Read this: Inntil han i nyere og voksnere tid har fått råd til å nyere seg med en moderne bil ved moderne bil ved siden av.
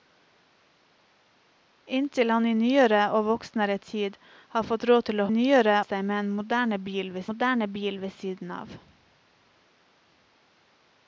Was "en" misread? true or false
false